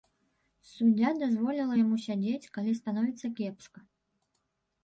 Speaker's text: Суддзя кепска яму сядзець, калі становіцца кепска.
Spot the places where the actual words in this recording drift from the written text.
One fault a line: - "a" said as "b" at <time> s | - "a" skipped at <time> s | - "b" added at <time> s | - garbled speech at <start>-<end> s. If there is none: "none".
- "кепска" said as "дазволіла" at 1.2 s